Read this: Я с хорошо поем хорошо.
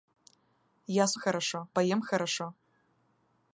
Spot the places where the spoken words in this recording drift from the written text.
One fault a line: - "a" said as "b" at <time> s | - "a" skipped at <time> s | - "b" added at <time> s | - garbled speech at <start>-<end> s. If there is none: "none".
none